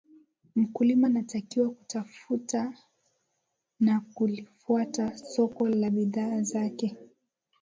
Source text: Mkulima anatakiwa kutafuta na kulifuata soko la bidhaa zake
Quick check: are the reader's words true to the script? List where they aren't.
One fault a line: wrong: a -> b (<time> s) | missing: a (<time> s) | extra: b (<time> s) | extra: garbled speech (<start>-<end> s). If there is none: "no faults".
no faults